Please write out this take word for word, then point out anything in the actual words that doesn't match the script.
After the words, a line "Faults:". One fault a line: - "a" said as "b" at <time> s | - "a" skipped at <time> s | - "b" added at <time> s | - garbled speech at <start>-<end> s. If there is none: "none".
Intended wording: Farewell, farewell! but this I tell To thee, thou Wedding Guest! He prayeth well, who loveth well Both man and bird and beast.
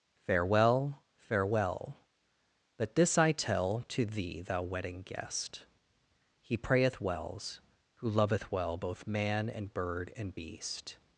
Farewell, farewell! but this I tell To thee, thou Wedding Guest! He prayeth wells, who loveth well Both man and bird and beast.
Faults:
- "well" said as "wells" at 7.0 s